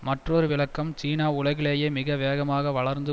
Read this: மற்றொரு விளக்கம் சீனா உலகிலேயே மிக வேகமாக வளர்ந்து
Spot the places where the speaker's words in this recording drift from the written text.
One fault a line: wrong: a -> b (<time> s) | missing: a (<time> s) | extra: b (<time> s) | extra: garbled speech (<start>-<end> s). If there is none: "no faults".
no faults